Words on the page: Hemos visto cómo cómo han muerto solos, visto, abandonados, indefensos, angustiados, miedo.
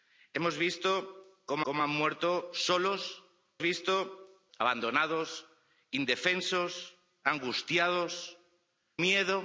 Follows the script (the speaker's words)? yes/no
yes